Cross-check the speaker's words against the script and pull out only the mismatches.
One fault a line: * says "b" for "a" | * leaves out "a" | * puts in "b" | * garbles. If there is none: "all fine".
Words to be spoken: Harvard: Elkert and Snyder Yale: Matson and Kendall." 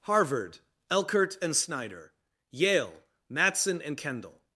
all fine